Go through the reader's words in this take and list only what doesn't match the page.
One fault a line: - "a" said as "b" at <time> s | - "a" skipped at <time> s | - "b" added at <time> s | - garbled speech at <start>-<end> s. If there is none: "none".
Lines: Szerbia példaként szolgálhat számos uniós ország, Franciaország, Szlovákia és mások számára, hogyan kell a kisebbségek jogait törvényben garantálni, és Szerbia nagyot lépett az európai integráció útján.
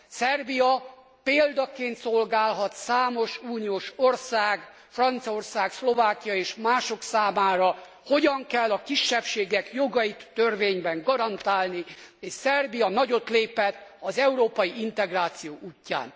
none